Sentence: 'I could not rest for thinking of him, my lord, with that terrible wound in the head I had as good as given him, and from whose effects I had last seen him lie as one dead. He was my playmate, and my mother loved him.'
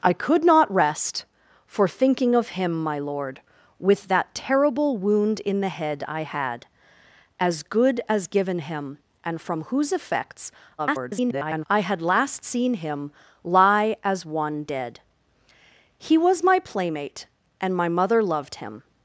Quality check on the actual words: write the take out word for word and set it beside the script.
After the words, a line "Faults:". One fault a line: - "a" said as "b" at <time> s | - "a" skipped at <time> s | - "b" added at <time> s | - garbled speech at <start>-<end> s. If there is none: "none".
'I could not rest for thinking of him, my lord, with that terrible wound in the head I had as good as given him, and from whose effects [garbled] I had last seen him lie as one dead. He was my playmate, and my mother loved him.'
Faults:
- garbled speech at 10.8-11.7 s